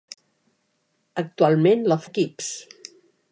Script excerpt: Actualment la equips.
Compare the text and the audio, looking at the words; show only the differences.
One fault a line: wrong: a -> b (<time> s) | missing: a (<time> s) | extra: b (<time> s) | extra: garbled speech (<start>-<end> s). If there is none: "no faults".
no faults